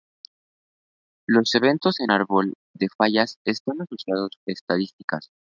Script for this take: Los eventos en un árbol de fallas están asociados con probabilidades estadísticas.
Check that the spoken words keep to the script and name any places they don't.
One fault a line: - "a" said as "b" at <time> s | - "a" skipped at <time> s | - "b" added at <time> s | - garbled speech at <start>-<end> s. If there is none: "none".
- "un" skipped at 2.1 s
- "con probabilidades" skipped at 4.3 s